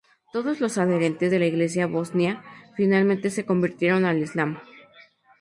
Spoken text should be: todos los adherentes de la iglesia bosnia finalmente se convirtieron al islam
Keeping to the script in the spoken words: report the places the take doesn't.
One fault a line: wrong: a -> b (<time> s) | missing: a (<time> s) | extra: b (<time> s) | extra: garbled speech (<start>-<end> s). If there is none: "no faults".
no faults